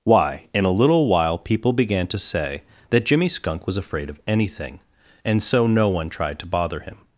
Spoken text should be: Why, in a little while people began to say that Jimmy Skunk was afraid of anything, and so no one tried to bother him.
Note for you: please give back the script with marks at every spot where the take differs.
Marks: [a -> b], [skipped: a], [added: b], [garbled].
Why, in a little while people began to say that Jimmy Skunk was afraid of anything, and so no one tried to bother him.